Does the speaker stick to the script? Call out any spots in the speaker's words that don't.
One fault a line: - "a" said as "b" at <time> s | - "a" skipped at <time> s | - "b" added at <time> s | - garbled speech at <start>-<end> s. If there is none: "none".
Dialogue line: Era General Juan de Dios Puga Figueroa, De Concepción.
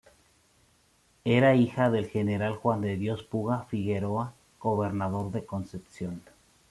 - "hija del" added at 1.5 s
- "Gobernador" added at 4.6 s